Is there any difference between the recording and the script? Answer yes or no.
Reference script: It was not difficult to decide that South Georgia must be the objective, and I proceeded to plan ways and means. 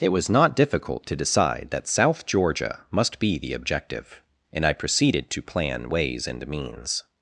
no